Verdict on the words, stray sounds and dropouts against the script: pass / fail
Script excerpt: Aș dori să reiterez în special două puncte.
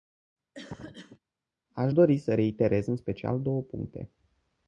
fail